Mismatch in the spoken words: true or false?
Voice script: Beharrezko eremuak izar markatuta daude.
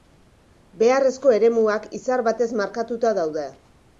true